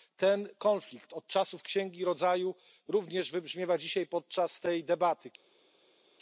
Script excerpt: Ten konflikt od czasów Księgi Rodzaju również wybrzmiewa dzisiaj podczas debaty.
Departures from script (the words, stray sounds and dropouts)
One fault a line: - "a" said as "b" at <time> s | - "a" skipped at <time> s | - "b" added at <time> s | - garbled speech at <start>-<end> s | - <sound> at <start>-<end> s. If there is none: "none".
- "tej" added at 4.6 s